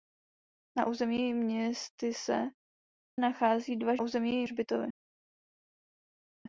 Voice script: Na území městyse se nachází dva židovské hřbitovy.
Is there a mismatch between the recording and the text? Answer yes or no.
yes